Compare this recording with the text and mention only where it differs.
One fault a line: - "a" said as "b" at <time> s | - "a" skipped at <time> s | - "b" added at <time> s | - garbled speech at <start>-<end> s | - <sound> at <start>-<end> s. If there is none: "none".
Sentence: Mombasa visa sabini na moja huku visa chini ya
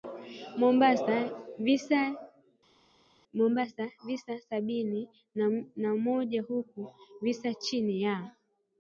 none